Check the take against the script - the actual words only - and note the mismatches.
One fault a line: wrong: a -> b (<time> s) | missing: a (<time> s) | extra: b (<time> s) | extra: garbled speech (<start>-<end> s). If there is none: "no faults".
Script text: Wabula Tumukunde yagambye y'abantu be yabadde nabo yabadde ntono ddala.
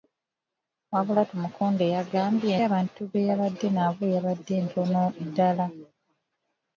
no faults